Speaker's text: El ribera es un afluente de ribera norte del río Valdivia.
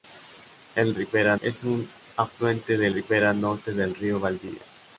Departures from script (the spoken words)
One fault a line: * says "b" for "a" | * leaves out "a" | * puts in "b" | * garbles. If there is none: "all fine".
all fine